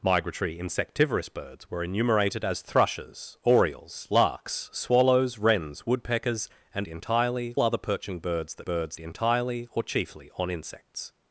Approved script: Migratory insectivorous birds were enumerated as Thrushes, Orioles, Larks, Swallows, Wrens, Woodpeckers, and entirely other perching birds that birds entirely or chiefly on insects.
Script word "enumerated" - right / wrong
right